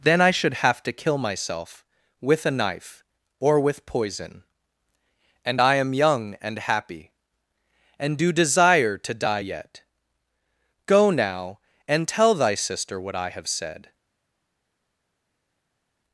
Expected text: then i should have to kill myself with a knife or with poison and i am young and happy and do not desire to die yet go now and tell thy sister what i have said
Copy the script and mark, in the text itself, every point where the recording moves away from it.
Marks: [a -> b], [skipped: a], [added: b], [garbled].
then i should have to kill myself with a knife or with poison and i am young and happy and do [skipped: not] desire to die yet go now and tell thy sister what i have said